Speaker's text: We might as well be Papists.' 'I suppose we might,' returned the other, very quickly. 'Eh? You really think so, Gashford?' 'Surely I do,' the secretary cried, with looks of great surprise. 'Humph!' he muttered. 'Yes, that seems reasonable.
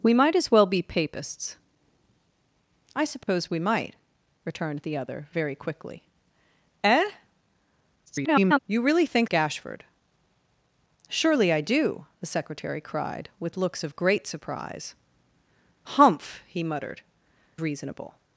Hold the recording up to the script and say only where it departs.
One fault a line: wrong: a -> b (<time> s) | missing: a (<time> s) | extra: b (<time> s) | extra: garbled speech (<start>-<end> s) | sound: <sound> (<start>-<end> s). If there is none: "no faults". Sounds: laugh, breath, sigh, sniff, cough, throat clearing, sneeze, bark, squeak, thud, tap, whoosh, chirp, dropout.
sound: dropout (3.2-3.3 s)
extra: garbled speech (8.1-8.6 s)
missing: so (9.3 s)
missing: Yes that seems (17.0 s)